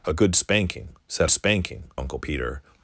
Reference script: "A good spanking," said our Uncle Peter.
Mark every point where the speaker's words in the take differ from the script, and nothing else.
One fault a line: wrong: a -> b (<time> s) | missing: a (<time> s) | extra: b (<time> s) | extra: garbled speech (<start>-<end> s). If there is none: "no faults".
wrong: our -> spanking (1.3 s)